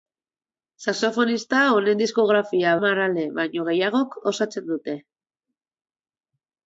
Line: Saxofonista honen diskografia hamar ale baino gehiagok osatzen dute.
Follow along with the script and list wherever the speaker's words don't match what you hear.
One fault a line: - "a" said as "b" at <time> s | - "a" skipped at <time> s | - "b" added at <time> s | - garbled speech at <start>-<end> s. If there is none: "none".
none